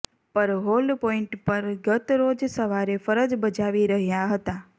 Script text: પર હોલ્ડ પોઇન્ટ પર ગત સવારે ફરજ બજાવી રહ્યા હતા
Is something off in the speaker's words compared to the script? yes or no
yes